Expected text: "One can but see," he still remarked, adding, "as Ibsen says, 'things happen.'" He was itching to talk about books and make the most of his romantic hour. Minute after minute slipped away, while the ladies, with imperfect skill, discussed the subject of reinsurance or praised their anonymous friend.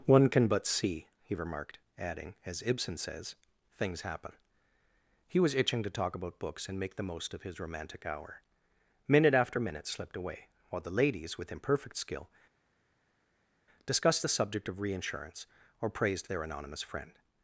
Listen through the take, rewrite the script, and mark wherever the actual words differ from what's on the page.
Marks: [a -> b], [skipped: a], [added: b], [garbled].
"One can but see," he [skipped: still] remarked, adding, "as Ibsen says, 'things happen.'" He was itching to talk about books and make the most of his romantic hour. Minute after minute slipped away, while the ladies, with imperfect skill, discussed the subject of reinsurance or praised their anonymous friend.